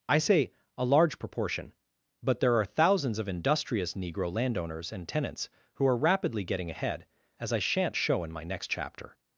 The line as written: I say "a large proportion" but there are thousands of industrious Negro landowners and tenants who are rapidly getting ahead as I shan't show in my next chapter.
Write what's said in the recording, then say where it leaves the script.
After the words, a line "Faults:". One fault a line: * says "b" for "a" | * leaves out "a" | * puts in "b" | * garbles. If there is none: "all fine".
I say "a large proportion" but there are thousands of industrious Negro landowners and tenants who are rapidly getting ahead as I shan't show in my next chapter.
Faults:
all fine